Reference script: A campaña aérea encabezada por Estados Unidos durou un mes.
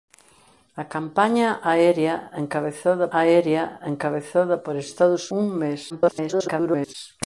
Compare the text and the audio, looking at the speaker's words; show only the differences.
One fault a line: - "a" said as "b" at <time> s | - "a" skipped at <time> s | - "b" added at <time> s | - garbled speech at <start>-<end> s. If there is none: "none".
- "aérea encabezada" added at 3.2 s
- "Unidos durou" skipped at 5.2 s
- garbled speech at 5.9-6.9 s